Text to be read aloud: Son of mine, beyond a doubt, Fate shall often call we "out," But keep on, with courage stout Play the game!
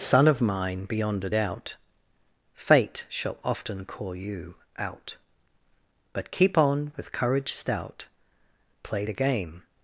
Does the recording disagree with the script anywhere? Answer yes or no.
yes